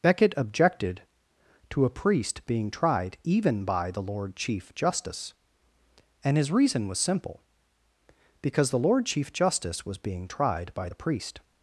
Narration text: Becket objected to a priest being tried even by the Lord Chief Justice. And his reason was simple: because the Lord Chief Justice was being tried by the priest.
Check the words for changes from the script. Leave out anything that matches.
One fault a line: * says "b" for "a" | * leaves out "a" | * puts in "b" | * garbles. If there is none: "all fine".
all fine